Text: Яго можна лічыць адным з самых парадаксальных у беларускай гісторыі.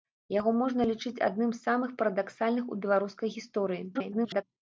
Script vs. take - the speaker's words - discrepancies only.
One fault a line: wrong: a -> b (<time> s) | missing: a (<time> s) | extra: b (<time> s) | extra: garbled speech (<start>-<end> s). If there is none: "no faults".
extra: garbled speech (3.9-4.4 s)